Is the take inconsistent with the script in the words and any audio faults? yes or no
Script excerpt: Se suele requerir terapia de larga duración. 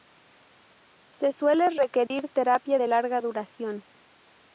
yes